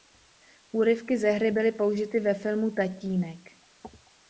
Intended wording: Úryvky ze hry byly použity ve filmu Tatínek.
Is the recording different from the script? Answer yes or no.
no